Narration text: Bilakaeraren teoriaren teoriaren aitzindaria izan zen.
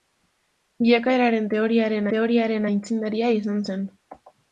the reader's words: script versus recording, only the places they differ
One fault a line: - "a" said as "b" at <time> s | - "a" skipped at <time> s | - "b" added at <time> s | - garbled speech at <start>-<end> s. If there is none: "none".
none